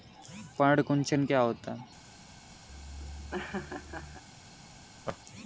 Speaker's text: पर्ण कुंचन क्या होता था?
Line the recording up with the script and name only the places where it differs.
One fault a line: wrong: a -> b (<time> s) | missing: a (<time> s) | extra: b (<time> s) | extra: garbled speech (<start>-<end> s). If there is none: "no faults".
wrong: था -> है (1.7 s)